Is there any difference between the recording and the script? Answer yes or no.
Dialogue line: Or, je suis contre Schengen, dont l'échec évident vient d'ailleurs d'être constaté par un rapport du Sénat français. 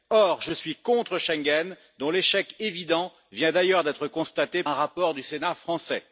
yes